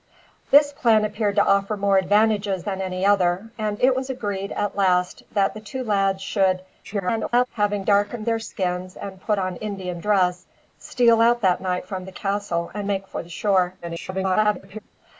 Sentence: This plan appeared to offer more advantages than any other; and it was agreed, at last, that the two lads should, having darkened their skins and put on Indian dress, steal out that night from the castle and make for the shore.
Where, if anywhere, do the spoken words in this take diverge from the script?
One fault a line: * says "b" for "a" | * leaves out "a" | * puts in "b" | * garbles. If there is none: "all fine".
* garbles
* garbles